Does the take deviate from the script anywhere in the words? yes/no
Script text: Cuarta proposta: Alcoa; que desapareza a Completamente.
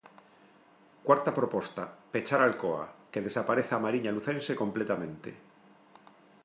yes